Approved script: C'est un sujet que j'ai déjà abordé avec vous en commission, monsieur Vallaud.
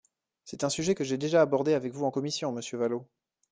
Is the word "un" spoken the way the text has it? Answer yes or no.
yes